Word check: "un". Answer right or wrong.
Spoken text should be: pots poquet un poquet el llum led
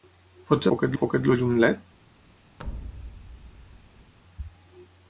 right